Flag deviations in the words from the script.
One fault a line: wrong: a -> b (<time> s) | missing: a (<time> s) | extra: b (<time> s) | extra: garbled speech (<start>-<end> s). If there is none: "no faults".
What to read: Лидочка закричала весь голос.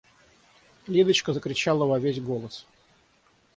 extra: во (1.8 s)